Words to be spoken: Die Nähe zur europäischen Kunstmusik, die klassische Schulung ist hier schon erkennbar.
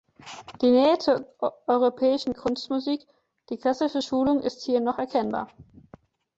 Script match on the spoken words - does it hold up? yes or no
no